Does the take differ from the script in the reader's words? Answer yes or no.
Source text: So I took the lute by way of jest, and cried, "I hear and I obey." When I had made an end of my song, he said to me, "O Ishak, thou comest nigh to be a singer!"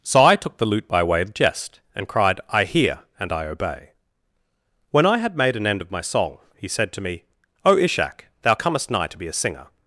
no